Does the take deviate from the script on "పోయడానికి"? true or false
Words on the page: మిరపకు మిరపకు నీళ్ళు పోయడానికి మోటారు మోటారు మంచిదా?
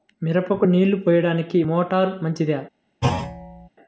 false